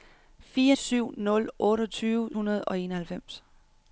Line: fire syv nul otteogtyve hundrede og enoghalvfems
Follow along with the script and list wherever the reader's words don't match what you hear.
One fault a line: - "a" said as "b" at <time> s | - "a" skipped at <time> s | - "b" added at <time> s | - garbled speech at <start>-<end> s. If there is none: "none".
none